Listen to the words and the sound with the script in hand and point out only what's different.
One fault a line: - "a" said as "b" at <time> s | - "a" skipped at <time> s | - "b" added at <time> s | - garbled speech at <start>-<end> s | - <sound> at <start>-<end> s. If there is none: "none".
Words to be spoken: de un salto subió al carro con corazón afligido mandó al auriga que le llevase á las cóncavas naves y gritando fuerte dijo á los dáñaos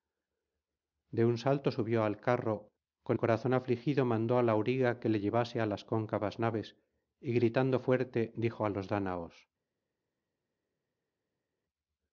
none